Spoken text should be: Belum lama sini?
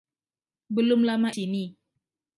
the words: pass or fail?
pass